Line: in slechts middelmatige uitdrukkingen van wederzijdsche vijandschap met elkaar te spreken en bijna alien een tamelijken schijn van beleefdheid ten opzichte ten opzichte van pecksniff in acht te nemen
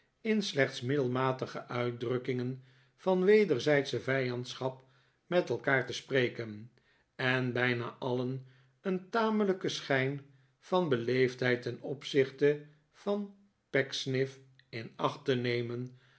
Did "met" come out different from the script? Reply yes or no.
no